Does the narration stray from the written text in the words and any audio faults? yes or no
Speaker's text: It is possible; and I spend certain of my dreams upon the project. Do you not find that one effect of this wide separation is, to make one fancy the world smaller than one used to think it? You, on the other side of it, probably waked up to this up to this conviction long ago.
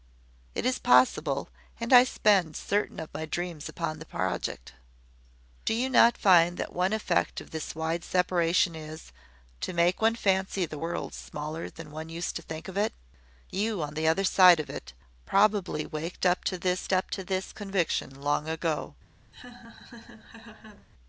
yes